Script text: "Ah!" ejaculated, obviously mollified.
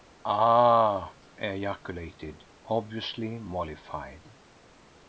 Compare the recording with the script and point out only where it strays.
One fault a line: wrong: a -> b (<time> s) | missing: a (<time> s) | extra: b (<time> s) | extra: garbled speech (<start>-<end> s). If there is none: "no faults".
no faults